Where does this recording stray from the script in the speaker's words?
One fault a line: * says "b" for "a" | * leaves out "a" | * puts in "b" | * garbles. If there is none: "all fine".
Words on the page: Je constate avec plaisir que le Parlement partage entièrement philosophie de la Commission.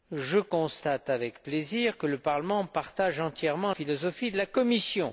all fine